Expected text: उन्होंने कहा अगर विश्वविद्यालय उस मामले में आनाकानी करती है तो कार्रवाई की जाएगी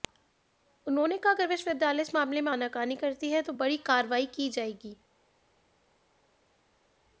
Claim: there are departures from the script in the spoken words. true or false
true